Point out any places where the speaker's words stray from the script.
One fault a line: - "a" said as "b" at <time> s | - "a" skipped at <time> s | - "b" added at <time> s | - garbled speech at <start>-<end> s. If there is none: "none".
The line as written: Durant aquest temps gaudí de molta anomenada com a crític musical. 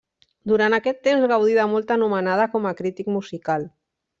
none